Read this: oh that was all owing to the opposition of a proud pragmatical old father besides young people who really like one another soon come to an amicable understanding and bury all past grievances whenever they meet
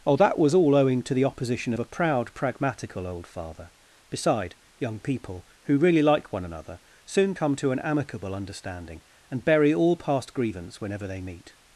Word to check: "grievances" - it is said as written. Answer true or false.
false